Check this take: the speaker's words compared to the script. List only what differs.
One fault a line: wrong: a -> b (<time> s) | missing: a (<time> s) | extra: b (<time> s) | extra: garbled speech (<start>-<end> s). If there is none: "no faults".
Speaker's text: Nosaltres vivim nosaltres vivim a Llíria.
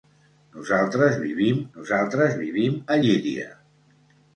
no faults